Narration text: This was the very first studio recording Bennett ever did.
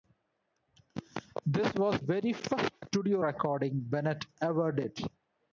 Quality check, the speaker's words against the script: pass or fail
fail